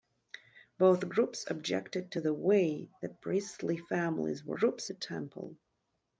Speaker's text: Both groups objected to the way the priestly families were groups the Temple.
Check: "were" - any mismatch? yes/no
no